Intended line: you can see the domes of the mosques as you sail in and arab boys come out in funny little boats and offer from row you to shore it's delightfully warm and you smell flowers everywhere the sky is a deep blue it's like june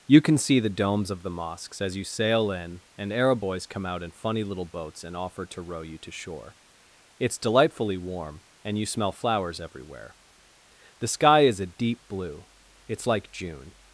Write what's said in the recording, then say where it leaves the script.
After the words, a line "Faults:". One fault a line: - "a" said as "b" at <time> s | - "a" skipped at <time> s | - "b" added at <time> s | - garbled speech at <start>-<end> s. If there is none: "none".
you can see the domes of the mosques as you sail in and arab boys come out in funny little boats and offer to row you to shore it's delightfully warm and you smell flowers everywhere the sky is a deep blue it's like june
Faults:
- "from" said as "to" at 5.5 s